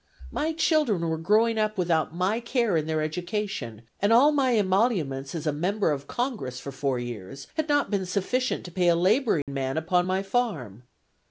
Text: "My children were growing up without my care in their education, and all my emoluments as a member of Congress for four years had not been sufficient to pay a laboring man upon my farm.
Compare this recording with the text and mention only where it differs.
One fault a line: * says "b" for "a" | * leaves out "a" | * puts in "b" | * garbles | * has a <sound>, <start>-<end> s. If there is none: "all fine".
* has a dropout, 9.4-9.5 s